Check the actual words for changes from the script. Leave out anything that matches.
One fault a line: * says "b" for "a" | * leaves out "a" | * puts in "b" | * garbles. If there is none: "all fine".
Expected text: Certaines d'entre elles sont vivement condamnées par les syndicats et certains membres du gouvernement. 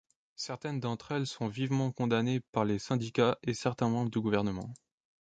all fine